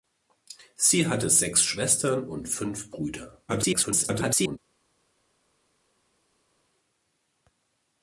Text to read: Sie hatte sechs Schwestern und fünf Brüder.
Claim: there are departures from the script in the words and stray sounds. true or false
true